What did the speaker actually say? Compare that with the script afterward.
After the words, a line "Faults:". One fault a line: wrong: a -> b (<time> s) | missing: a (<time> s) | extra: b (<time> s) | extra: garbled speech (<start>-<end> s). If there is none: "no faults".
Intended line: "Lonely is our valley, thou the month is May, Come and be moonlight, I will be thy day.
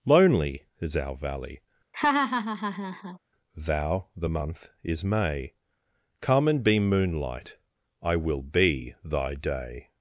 "Lonely is our valley, thou the month is May, Come and be moonlight, I will be thy day.
Faults:
no faults